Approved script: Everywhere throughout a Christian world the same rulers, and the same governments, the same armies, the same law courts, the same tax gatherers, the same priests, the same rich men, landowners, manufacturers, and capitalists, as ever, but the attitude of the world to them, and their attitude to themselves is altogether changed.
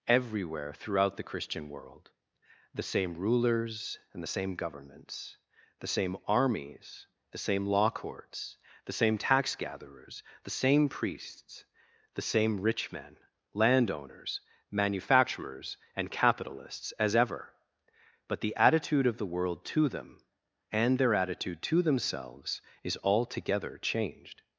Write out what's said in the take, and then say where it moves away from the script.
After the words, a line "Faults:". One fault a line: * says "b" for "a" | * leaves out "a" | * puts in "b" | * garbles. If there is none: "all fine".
Everywhere throughout the Christian world the same rulers, and the same governments, the same armies, the same law courts, the same tax gatherers, the same priests, the same rich men, landowners, manufacturers, and capitalists, as ever, but the attitude of the world to them, and their attitude to themselves is altogether changed.
Faults:
* says "the" for "a"